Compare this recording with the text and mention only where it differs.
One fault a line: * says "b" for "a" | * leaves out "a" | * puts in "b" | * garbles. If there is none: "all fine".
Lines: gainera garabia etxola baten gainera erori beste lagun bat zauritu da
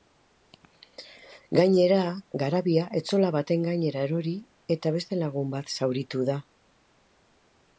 * puts in "eta"